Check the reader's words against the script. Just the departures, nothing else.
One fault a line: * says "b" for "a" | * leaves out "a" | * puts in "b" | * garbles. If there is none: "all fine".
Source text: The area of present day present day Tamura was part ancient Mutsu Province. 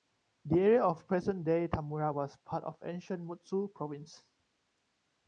* leaves out "present day"
* puts in "of"